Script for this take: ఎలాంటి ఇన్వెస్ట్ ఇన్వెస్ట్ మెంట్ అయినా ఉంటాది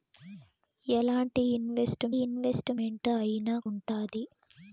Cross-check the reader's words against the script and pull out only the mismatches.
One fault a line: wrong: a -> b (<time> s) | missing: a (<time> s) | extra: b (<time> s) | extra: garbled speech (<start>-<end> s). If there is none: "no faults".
no faults